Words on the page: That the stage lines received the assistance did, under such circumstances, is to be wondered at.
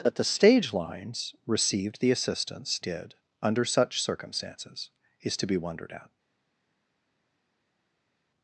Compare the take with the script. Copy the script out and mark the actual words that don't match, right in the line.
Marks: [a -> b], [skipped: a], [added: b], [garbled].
That the stage lines received the assistance did, under such circumstances, is to be wondered at.